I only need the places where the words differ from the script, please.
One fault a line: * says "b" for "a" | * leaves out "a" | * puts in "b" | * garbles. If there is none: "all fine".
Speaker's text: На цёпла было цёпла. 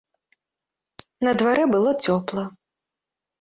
* says "дварэ" for "цёпла"